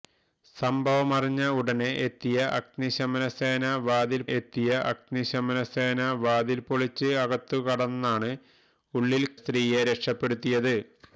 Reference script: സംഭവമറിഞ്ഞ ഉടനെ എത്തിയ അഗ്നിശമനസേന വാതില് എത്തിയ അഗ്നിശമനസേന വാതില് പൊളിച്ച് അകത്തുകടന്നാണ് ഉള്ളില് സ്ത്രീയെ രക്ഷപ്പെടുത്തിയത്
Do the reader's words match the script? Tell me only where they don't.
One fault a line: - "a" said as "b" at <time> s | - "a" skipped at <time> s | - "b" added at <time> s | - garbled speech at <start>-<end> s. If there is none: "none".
none